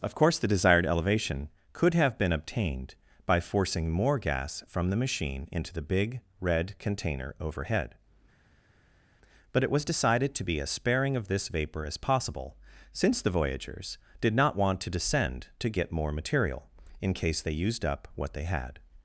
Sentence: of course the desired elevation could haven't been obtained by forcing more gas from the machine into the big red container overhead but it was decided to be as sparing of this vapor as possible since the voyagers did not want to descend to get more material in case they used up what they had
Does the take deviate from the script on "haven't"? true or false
true